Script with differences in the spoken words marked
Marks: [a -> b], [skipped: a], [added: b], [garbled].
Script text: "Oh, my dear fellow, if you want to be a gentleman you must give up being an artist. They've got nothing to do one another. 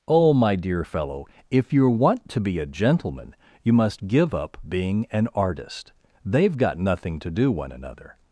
"Oh, my dear fellow, if you want to be a gentleman you must give up being an artist. They've got nothing to do one another.